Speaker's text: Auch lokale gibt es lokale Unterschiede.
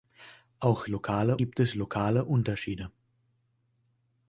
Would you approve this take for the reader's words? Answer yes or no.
yes